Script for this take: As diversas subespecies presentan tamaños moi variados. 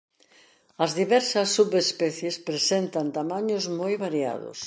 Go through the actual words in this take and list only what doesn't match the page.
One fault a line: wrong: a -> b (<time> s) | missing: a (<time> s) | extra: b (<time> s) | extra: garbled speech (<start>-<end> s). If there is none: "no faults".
no faults